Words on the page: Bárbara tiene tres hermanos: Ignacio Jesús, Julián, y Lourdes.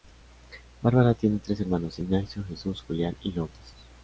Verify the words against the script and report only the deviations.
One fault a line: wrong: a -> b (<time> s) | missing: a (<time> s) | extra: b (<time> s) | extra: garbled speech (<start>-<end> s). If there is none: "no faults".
no faults